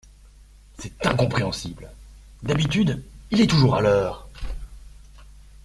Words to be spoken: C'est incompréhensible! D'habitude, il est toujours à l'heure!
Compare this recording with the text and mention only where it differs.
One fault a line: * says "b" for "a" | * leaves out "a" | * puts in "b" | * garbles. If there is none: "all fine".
all fine